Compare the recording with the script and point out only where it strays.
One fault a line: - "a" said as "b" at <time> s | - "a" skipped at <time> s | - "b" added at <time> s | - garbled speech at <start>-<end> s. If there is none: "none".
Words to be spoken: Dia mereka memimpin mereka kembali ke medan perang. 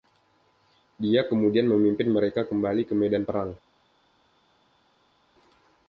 - "mereka" said as "kemudian" at 1.3 s